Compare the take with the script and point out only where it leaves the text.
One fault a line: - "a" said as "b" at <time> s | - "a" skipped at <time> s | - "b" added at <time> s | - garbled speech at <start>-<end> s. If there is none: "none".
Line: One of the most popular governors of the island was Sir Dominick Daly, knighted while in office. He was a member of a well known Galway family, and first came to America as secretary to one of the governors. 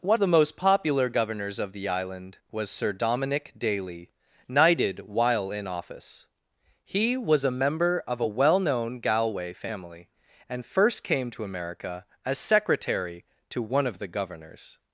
- "of" skipped at 0.2 s